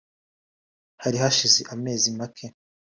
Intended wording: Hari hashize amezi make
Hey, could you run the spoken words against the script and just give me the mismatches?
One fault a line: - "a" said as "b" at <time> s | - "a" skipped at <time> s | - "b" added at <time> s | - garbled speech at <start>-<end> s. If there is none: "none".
none